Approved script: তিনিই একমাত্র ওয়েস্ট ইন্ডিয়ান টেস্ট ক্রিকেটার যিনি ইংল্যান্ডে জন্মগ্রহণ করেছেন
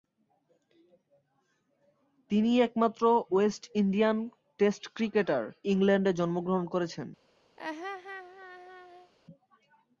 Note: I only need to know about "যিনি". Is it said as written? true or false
false